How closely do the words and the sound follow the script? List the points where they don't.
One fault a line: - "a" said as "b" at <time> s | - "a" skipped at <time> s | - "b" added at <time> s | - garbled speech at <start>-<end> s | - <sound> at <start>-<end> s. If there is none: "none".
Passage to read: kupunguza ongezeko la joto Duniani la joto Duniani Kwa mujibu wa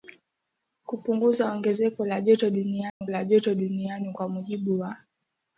- dropout at 2.9-3.0 s